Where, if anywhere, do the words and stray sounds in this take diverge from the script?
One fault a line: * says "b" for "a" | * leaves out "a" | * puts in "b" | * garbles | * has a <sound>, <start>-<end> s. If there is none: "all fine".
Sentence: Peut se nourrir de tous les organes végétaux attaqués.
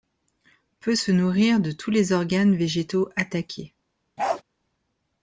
* has a bark, 4.2-4.4 s